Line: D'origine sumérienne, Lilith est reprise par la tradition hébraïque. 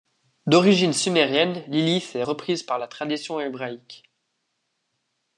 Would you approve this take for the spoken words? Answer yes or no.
yes